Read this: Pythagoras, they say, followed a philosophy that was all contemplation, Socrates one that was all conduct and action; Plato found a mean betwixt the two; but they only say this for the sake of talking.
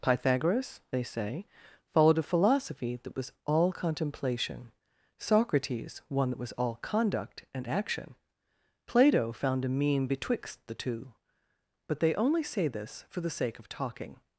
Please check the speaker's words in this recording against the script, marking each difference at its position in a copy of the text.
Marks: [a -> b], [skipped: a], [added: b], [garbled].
Pythagoras, they say, followed a philosophy that was all contemplation, Socrates one that was all conduct and action; Plato found a mean betwixt the two; but they only say this for the sake of talking.